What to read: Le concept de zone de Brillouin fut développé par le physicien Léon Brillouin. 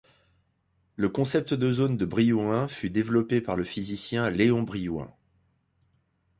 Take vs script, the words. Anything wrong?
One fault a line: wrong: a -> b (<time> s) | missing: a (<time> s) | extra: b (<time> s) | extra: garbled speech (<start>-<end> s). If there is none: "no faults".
no faults